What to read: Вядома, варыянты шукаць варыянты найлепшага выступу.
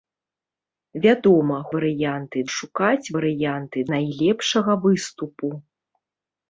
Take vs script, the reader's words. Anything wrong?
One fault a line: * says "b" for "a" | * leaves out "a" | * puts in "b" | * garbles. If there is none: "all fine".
all fine